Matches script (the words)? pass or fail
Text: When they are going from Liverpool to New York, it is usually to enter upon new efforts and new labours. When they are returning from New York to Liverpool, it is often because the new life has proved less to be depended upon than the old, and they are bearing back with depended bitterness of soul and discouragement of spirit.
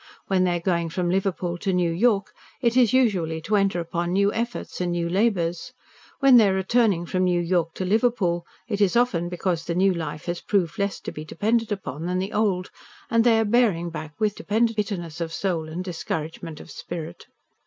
pass